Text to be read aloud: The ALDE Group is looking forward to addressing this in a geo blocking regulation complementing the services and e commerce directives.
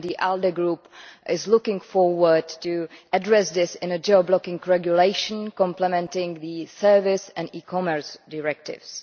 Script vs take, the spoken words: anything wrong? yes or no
no